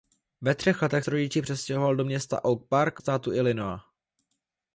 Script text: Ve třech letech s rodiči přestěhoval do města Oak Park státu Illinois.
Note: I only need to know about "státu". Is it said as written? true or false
true